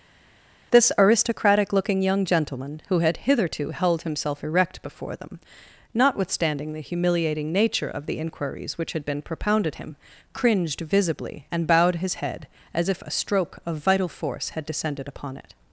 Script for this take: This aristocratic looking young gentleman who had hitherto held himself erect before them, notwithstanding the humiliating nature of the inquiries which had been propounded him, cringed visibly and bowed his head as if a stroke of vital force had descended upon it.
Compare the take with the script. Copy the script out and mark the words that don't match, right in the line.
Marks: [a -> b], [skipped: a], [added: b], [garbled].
This aristocratic looking young gentleman who had hitherto held himself erect before them, notwithstanding the humiliating nature of the inquiries which had been propounded him, cringed visibly and bowed his head as if a stroke of vital force had descended upon it.